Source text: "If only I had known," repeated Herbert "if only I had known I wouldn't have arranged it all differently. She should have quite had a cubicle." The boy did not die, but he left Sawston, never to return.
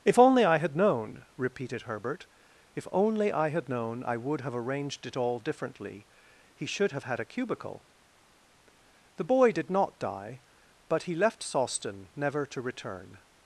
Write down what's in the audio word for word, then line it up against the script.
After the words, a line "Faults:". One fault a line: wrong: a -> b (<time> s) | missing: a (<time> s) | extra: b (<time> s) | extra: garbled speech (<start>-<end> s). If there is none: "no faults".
"If only I had known," repeated Herbert "if only I had known I would have arranged it all differently. He should have had a cubicle." The boy did not die, but he left Sawston, never to return.
Faults:
wrong: wouldn't -> would (4.2 s)
wrong: She -> He (6.5 s)
missing: quite (7.0 s)